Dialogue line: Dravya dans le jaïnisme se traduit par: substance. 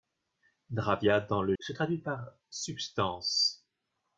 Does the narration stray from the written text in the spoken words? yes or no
yes